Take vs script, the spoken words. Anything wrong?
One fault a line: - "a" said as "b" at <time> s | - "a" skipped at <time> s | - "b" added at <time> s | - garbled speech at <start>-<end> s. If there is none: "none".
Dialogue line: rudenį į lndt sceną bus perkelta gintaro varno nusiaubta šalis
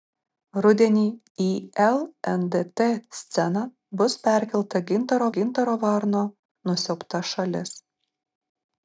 - "gintaro" added at 5.4 s